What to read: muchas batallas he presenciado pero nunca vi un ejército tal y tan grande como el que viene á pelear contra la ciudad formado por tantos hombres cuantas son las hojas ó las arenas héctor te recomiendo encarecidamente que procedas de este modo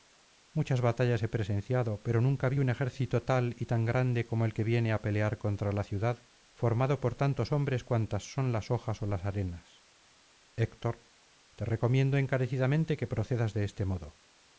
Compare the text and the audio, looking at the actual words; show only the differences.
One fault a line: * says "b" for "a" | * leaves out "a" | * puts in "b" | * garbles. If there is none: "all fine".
all fine